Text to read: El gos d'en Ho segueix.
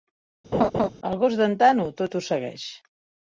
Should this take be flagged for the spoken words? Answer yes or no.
yes